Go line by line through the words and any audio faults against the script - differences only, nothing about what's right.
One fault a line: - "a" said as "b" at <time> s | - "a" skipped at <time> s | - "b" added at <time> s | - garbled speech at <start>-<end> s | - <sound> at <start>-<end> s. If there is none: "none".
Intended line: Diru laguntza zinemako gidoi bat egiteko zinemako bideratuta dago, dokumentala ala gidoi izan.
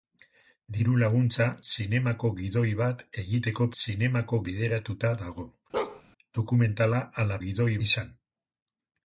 - bark at 5.7-6.0 s